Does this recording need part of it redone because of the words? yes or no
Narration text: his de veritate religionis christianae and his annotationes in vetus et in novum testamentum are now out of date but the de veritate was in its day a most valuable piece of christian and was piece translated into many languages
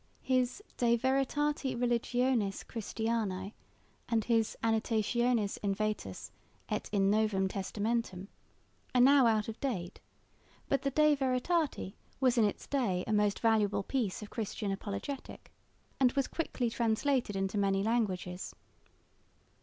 yes